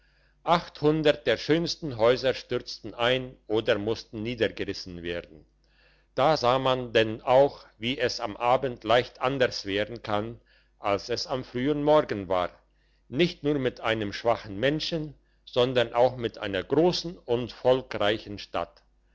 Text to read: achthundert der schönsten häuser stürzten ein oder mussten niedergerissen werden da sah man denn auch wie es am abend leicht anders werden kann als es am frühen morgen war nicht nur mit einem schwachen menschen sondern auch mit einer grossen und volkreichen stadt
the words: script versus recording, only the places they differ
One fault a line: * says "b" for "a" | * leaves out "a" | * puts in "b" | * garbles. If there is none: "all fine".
all fine